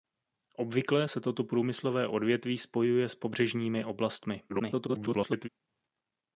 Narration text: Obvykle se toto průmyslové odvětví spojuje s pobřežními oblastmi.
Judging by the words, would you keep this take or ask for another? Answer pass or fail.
fail